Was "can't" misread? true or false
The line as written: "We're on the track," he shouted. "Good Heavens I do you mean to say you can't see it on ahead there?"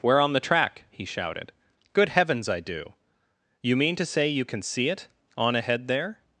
true